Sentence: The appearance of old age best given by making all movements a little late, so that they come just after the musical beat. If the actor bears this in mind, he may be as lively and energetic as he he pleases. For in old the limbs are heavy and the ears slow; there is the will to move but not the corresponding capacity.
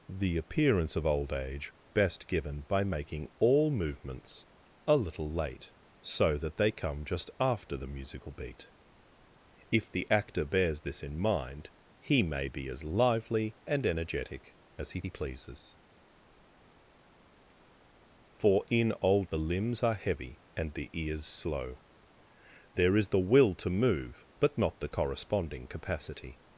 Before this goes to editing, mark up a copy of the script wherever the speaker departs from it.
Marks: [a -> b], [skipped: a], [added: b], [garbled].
The appearance of old age best given by making all movements a little late, so that they come just after the musical beat. If the actor bears this in mind, he may be as lively and energetic as he he pleases. For in old the limbs are heavy and the ears slow; there is the will to move but not the corresponding capacity.